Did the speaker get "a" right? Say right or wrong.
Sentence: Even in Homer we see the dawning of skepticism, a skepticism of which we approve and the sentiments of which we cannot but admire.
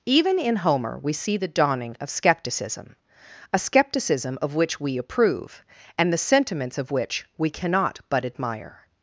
right